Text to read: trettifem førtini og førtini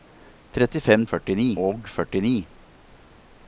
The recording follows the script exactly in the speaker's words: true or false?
true